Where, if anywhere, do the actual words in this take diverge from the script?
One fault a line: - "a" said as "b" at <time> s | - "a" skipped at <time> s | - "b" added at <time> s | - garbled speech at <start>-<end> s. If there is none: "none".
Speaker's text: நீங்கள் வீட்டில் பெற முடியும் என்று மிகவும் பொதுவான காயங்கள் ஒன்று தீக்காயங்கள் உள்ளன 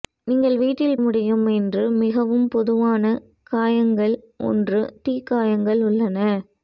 - "பெற" skipped at 1.0 s